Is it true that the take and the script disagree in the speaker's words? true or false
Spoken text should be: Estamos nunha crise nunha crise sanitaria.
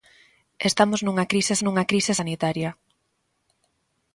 false